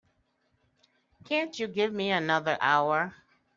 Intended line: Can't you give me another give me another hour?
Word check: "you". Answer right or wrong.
right